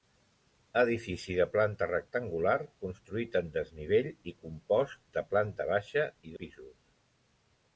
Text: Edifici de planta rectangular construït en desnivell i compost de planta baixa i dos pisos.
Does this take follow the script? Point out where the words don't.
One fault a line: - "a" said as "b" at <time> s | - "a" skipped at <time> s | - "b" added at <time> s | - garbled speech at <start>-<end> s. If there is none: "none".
- "dos" skipped at 6.4 s